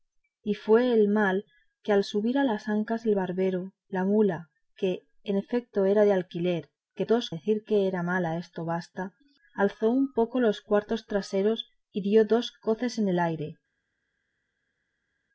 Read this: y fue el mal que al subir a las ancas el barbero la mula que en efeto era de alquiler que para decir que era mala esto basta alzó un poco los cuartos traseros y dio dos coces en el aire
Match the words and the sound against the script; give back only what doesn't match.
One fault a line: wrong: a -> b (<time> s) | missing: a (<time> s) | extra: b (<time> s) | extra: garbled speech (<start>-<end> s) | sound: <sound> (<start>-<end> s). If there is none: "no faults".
wrong: para -> dos (7.0 s)